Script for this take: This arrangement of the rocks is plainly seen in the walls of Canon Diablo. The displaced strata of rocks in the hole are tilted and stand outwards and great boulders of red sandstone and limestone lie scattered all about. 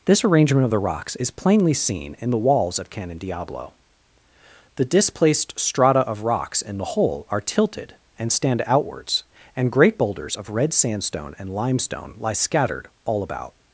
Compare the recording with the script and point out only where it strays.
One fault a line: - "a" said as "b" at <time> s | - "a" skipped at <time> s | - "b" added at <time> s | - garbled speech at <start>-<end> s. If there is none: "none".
none